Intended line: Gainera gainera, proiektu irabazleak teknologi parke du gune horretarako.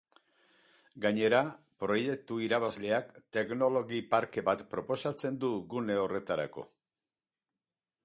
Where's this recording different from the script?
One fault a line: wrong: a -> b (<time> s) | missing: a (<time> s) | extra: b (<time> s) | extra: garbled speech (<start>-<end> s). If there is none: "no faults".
missing: gainera (1.4 s)
extra: bat proposatzen (4.5 s)